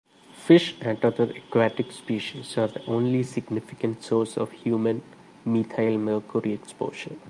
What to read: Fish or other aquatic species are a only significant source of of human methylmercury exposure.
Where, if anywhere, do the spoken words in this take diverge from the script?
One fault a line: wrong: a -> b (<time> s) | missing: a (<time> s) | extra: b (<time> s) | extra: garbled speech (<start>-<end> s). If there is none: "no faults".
wrong: or -> and (0.8 s)
wrong: a -> the (2.7 s)
missing: of (4.5 s)